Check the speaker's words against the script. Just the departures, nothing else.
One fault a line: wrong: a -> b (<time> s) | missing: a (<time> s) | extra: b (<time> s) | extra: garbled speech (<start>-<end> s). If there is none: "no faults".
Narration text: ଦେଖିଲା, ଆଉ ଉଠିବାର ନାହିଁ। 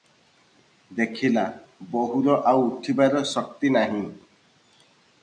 extra: ବୋହୂର (1.9 s)
extra: ଶକ୍ତି (3.3 s)